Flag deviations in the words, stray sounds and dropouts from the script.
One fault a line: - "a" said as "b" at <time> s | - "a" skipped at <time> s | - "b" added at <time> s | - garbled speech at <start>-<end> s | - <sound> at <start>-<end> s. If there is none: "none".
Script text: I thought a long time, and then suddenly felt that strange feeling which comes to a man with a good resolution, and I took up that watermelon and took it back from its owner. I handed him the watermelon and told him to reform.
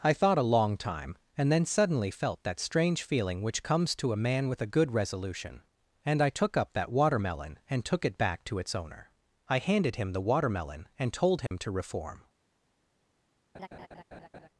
- "from" said as "to" at 8.4 s
- dropout at 11.5-11.5 s
- laugh at 13.5-14.5 s